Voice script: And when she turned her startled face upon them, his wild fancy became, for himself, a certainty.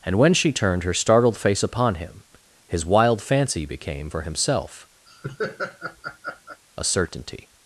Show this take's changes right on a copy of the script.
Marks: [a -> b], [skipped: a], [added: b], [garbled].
And when she turned her startled face upon [them, -> him] his wild fancy became, for himself, a certainty.